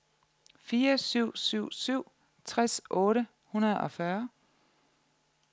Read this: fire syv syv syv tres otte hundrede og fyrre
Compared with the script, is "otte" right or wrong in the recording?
right